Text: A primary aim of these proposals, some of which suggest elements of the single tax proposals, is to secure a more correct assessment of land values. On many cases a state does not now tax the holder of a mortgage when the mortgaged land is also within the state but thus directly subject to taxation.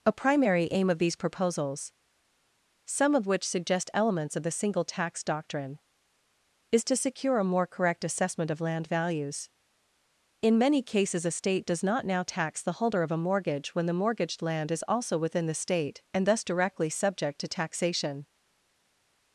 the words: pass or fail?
fail